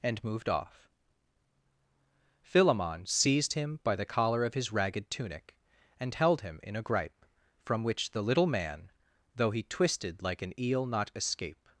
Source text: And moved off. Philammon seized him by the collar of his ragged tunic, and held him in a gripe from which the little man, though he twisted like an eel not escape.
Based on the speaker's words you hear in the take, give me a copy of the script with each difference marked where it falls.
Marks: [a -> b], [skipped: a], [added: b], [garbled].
And moved off. Philammon seized him by the collar of his ragged tunic, and held him in a gripe from which the little man, though he twisted like an eel not escape.